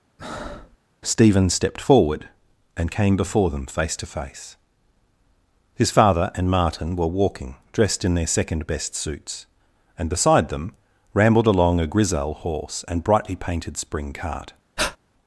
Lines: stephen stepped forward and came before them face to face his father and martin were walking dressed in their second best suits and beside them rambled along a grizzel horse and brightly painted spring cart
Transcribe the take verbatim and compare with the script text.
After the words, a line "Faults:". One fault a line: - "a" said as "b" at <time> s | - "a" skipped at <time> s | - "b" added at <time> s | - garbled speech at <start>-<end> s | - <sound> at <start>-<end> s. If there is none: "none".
stephen stepped forward and came before them face to face his father and martin were walking dressed in their second best suits and beside them rambled along a grizzel horse and brightly painted spring cart
Faults:
- breath at 0.2-0.8 s
- breath at 14.8-15.0 s